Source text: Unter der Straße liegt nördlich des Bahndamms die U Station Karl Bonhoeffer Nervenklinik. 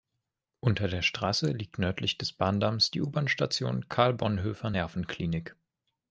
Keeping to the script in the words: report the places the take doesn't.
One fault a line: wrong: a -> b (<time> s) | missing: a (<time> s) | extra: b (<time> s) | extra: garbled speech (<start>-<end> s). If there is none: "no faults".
extra: Bahn (3.1 s)